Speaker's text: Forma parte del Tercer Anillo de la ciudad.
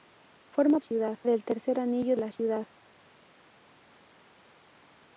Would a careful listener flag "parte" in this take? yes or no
yes